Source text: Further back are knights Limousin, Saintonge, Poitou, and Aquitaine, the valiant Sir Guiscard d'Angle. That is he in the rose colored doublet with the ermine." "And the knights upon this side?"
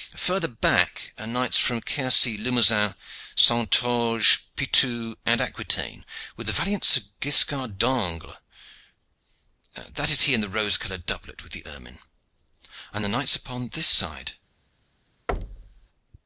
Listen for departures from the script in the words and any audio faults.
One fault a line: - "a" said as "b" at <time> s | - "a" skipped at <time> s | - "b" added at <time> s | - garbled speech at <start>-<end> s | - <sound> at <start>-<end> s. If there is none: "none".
- "from Quercy" added at 1.6 s
- "with" added at 6.3 s
- thud at 15.3-15.9 s